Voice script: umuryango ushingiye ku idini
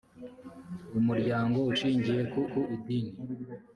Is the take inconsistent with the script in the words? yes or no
yes